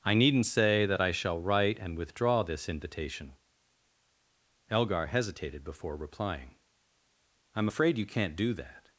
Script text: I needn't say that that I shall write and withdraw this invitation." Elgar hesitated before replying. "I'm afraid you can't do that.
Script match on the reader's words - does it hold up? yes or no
no